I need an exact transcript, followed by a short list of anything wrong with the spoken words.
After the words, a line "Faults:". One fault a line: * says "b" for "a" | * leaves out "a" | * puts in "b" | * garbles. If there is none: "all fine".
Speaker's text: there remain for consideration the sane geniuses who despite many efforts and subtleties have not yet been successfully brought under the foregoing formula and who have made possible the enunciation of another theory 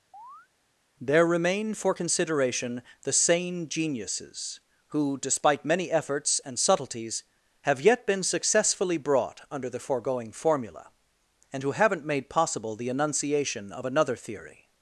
there remain for consideration the sane geniuses who despite many efforts and subtleties have yet been successfully brought under the foregoing formula and who haven't made possible the enunciation of another theory
Faults:
* leaves out "not"
* says "haven't" for "have"